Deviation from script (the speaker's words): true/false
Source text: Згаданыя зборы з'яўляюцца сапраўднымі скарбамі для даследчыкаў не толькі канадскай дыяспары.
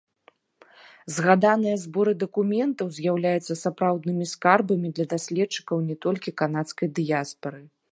true